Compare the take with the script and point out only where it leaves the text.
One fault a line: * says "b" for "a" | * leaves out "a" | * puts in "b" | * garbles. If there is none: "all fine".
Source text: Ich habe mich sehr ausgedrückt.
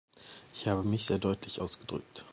* puts in "deutlich"